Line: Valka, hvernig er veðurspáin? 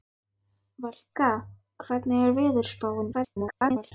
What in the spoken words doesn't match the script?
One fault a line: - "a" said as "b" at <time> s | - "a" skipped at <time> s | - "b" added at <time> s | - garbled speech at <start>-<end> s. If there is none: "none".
- garbled speech at 3.1-3.9 s